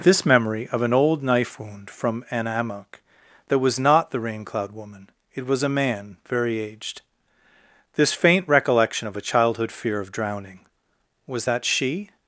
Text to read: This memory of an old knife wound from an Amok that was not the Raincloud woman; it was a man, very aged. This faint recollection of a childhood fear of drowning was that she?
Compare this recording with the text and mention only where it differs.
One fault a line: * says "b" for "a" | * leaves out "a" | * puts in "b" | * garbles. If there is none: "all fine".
all fine